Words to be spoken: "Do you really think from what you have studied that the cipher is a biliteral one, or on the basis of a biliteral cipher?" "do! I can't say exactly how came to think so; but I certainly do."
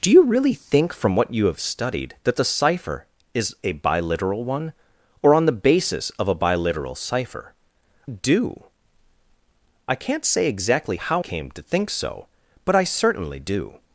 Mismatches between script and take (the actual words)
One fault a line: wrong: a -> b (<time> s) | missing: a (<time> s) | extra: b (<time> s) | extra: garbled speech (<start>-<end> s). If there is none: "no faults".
no faults